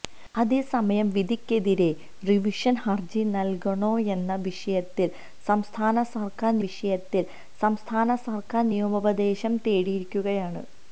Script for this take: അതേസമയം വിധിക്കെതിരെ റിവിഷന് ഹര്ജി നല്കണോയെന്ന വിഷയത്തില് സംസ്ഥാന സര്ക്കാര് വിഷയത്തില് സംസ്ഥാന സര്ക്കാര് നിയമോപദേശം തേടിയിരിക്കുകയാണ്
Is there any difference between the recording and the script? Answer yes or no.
no